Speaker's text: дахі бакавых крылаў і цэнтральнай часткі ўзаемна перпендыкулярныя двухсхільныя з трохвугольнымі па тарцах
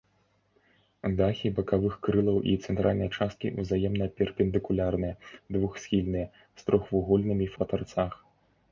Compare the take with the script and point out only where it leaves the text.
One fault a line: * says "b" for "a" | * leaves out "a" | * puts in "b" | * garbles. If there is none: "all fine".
all fine